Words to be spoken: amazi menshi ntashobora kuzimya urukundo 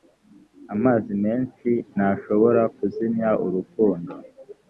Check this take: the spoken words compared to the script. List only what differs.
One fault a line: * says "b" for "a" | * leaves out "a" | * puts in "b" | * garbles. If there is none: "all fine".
all fine